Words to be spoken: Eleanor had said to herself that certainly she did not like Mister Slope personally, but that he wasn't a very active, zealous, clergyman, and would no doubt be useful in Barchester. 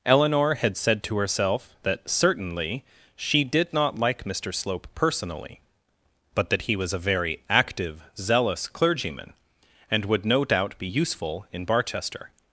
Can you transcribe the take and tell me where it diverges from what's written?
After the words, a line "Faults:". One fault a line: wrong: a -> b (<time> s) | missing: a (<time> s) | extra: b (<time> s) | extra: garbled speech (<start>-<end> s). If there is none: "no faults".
Eleanor had said to herself that certainly she did not like Mister Slope personally, but that he was a very active, zealous, clergyman, and would no doubt be useful in Barchester.
Faults:
wrong: wasn't -> was (6.8 s)